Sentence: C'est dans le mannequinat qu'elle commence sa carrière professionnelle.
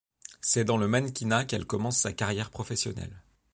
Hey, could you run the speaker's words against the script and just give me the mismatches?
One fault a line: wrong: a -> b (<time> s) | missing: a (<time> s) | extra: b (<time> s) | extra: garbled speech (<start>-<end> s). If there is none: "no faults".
no faults